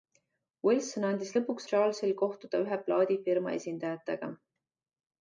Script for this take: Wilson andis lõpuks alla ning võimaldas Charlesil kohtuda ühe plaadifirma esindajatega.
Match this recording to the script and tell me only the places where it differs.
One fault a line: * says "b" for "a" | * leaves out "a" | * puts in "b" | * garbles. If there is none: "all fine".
* leaves out "alla ning võimaldas"